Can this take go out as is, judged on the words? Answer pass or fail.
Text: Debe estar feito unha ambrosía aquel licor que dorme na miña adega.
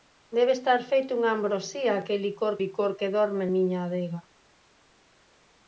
fail